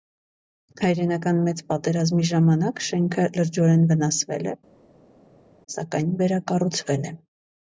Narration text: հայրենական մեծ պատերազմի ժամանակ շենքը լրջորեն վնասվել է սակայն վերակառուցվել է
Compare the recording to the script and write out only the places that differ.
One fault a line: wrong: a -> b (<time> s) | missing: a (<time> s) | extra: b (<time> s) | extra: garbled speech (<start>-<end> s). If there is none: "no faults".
no faults